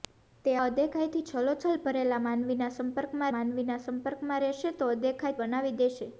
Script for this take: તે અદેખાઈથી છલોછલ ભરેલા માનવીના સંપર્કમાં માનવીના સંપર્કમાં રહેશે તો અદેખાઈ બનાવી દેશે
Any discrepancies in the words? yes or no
no